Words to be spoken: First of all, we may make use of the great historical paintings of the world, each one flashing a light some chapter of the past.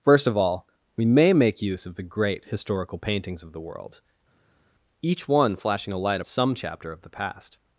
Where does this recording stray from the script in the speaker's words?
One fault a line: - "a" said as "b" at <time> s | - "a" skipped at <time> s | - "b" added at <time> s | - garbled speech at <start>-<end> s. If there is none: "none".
none